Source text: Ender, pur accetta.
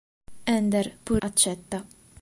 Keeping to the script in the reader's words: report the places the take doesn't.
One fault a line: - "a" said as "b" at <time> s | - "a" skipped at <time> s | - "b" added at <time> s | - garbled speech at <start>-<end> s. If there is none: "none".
none